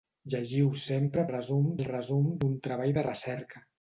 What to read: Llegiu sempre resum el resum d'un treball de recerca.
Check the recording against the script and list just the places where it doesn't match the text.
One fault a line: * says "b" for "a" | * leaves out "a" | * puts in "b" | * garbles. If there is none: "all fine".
all fine